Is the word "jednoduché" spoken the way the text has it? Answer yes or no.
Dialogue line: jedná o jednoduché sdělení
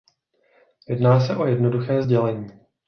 yes